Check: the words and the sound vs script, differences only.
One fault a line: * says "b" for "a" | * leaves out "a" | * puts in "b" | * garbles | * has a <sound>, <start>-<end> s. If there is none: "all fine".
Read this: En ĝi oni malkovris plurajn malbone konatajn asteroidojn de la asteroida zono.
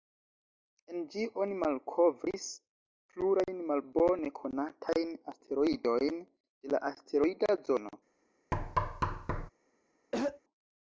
* has a thud, 8.5-9.5 s
* has a throat clearing, 10.1-10.4 s